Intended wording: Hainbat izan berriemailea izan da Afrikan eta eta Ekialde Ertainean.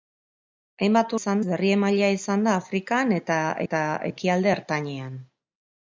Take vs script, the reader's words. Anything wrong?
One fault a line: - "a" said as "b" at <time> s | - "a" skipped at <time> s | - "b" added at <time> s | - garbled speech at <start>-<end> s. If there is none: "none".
none